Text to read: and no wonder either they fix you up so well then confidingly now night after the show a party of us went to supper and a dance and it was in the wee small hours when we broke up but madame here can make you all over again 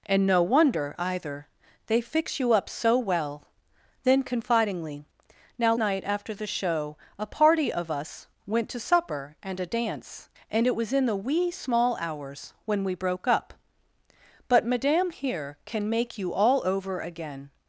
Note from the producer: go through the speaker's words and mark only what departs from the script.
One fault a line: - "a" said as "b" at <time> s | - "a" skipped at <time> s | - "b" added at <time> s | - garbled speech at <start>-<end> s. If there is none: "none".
none